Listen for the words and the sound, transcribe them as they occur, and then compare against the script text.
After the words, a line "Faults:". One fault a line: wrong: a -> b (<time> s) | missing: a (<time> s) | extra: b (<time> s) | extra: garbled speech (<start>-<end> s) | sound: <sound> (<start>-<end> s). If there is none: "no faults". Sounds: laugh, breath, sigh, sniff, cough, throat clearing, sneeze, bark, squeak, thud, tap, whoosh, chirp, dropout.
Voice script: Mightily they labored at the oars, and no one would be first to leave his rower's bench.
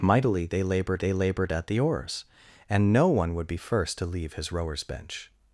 Mightily they labored they labored at the oars, and no one would be first to leave his rower's bench.
Faults:
extra: they labored (1.0 s)